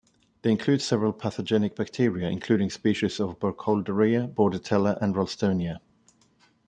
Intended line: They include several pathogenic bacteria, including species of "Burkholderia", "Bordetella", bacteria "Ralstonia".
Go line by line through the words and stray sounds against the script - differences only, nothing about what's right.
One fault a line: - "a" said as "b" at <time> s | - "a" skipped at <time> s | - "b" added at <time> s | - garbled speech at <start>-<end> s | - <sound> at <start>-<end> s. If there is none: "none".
- "bacteria" said as "and" at 5.0 s